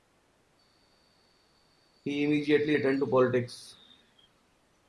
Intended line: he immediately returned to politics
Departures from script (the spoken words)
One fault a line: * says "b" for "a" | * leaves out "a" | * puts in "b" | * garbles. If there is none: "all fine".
all fine